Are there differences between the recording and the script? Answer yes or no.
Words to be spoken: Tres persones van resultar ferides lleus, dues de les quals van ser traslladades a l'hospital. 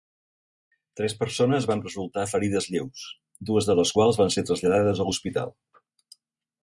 no